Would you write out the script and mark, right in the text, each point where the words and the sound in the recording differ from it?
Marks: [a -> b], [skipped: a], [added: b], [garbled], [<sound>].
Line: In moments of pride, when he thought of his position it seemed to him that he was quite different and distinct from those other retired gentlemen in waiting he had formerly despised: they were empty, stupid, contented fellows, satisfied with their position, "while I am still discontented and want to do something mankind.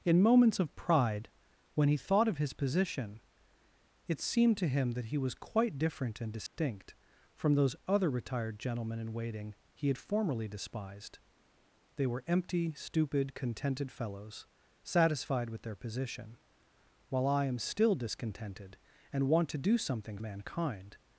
In moments of pride, when he thought of his position it seemed to him that he was quite different and distinct [dropout] from those other retired gentlemen in waiting he had formerly despised: they were empty, stupid, contented fellows, satisfied with their position, "while I am still discontented and want to do something mankind.